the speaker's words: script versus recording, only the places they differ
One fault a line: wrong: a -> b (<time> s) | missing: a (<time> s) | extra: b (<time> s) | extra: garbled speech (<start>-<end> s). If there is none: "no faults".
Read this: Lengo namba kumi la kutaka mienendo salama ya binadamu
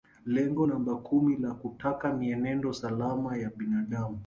no faults